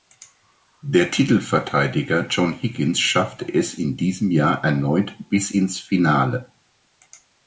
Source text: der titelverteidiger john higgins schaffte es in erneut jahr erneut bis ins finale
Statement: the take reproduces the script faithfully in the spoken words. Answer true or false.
false